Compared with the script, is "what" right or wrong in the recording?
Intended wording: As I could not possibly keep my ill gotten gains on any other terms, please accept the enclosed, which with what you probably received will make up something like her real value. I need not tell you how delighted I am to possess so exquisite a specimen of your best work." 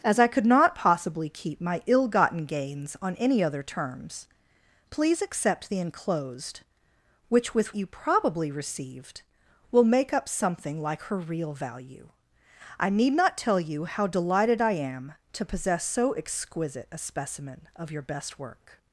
wrong